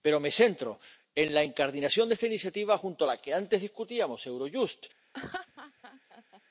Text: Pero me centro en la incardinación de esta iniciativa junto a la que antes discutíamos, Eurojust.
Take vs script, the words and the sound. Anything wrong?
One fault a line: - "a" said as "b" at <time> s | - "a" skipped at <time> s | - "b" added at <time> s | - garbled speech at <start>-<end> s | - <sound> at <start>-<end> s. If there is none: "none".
- laugh at 5.1-6.4 s